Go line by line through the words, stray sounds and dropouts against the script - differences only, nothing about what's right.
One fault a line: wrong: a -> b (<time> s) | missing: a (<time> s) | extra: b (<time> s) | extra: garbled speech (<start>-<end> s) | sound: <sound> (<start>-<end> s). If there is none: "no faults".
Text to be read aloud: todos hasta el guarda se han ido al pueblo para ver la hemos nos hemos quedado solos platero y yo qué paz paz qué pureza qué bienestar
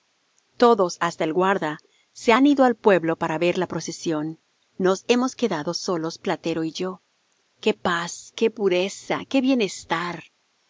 wrong: hemos -> procesión (3.7 s)
missing: paz (8.3 s)